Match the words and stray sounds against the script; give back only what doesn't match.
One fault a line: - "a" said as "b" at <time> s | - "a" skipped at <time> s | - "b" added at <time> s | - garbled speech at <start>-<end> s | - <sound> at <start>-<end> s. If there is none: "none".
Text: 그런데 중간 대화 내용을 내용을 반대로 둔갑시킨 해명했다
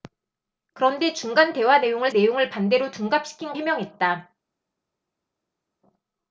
none